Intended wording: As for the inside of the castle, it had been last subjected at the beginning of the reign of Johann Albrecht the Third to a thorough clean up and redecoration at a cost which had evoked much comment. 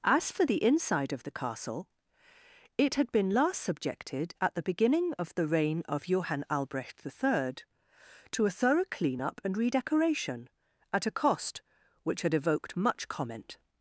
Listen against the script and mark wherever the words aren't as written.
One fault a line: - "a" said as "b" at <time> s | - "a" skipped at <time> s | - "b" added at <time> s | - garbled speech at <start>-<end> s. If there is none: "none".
none